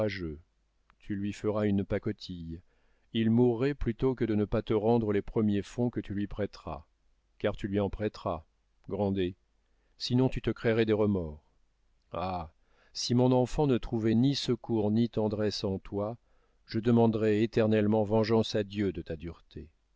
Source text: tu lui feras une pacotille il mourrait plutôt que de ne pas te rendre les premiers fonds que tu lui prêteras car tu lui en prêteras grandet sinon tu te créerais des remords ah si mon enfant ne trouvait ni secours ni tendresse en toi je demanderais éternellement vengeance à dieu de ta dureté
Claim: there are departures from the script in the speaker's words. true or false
false